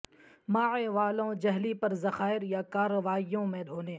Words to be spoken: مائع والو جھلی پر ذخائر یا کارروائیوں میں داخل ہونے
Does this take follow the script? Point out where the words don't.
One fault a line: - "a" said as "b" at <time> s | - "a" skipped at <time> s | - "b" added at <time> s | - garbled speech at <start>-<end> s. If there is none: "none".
- "داخل" skipped at 3.6 s